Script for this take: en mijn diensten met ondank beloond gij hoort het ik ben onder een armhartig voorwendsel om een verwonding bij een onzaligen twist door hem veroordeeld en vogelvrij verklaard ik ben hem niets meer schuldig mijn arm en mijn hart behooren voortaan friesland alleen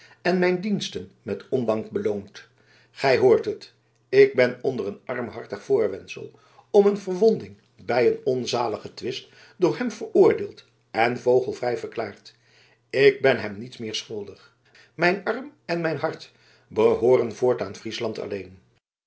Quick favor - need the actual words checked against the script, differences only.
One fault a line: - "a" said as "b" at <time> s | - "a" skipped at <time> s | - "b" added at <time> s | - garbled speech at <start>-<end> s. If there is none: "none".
none